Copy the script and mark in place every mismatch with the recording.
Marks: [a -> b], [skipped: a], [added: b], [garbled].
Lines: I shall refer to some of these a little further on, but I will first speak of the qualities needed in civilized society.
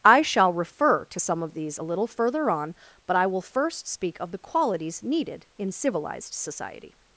I shall refer to some of these a little further on, but I will first speak of the qualities needed in civilized society.